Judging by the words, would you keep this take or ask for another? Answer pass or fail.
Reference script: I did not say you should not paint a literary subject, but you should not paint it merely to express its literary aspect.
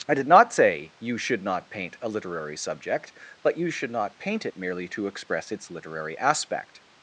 pass